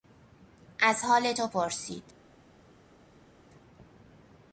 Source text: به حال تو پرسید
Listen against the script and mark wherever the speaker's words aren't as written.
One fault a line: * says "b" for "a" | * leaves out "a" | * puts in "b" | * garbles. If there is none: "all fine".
* says "از" for "به"